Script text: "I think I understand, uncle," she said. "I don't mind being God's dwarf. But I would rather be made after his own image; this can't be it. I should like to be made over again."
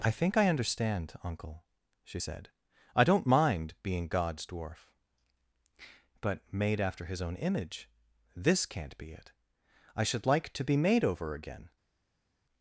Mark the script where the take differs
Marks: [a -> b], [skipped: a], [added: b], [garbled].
"I think I understand, uncle," she said. "I don't mind being God's dwarf. But [skipped: I would rather be] made after his own image; this can't be it. I should like to be made over again."